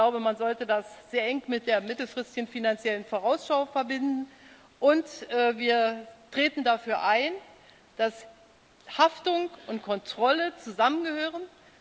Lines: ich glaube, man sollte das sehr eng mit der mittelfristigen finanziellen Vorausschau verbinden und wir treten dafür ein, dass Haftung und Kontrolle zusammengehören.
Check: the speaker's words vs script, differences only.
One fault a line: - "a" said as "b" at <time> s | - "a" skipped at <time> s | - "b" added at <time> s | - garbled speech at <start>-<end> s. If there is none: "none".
none